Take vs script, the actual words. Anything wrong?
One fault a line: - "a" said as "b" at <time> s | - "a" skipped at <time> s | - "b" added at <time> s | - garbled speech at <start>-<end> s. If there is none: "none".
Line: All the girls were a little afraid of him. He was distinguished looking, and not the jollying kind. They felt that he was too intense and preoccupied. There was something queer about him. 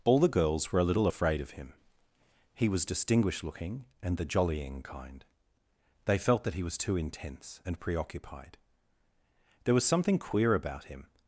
- "not" skipped at 4.2 s